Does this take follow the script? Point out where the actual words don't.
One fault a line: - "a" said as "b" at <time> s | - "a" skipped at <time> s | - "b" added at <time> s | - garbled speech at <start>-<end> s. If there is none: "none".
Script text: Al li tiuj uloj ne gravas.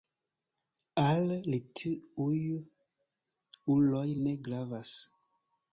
none